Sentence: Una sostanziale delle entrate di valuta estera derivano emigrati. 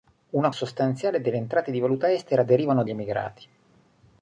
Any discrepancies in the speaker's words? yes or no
no